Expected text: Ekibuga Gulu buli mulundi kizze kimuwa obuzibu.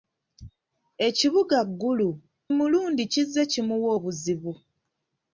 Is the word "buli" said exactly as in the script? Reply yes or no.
no